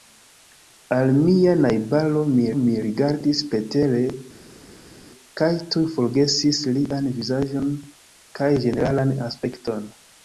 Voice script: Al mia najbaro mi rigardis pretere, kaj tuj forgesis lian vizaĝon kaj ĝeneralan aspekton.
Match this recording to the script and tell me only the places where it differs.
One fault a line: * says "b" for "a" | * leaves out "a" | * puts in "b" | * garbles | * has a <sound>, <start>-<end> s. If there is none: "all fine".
* puts in "mi"